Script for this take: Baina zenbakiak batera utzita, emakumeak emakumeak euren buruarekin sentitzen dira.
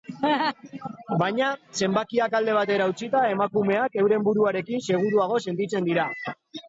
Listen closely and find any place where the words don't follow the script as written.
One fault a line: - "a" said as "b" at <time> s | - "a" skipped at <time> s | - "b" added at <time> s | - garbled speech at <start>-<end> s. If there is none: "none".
- "alde" added at 2.4 s
- "emakumeak" skipped at 4.0 s
- "seguruago" added at 4.9 s